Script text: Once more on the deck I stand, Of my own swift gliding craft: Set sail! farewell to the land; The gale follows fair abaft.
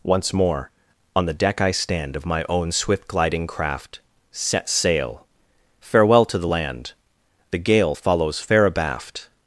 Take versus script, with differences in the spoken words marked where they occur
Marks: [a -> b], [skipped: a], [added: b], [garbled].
Once more on the deck I stand, Of my own swift gliding craft: Set sail! farewell to the land; The gale follows fair abaft.